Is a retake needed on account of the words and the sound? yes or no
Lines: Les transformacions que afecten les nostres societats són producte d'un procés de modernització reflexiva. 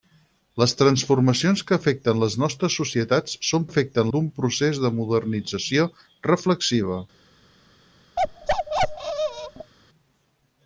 yes